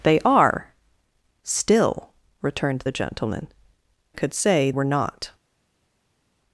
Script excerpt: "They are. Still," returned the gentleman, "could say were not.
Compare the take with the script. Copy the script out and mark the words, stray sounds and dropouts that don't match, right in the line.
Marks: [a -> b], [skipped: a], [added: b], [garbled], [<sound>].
"They are. Still," returned the gentleman, "could say were not.